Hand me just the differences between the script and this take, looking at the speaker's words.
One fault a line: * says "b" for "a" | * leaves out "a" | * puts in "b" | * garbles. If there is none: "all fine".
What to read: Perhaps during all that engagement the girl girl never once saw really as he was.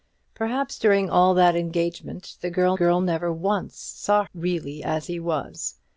all fine